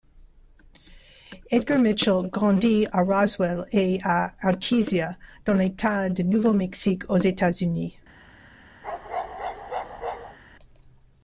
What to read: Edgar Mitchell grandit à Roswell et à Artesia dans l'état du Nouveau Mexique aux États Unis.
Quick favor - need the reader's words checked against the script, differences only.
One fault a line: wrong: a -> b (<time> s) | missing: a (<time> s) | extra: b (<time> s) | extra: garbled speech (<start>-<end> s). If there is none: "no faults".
no faults